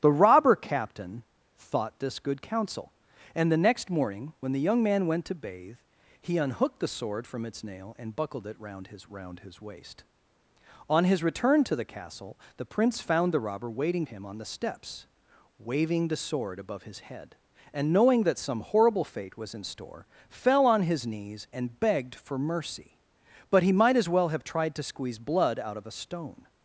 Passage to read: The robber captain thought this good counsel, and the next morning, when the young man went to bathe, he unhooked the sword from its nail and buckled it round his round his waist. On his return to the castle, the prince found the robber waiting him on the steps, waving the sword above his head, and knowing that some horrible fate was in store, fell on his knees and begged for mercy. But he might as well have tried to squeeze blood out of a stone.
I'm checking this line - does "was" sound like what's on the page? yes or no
yes